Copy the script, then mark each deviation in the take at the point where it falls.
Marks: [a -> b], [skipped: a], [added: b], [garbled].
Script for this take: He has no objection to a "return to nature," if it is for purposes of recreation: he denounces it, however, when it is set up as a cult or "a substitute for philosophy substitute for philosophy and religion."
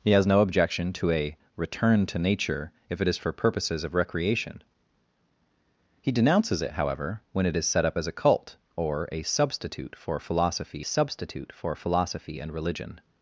He has no objection to a "return to nature," if it is for purposes of recreation: he denounces it, however, when it is set up as a cult or "a substitute for philosophy substitute for philosophy and religion."